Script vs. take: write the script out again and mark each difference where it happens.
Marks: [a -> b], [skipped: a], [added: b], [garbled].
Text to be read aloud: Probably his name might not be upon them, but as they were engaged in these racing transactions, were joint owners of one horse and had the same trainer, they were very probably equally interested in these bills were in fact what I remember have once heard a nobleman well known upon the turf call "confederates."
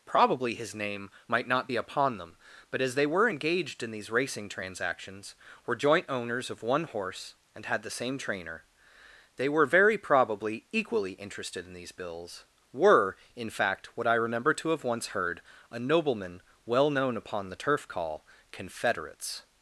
Probably his name might not be upon them, but as they were engaged in these racing transactions, were joint owners of one horse and had the same trainer, they were very probably equally interested in these bills were in fact what I remember [added: to] have once heard a nobleman well known upon the turf call "confederates."